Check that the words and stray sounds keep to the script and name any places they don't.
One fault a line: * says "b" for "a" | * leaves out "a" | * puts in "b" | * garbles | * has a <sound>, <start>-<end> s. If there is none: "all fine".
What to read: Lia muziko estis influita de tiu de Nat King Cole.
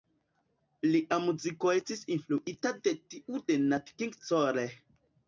all fine